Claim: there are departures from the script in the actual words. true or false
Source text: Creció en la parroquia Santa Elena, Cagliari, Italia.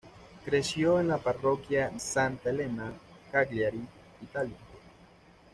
false